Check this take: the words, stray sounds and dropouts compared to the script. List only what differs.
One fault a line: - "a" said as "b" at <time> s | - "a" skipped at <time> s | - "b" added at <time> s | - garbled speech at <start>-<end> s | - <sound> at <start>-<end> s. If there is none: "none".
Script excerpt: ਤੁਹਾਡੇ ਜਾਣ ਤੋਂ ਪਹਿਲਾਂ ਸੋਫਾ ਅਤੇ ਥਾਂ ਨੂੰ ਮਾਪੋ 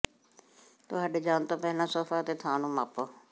none